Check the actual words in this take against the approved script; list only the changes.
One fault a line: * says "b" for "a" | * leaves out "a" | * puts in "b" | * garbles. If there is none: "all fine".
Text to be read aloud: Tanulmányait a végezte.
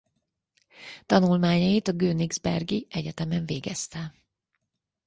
* puts in "königsbergi egyetemen"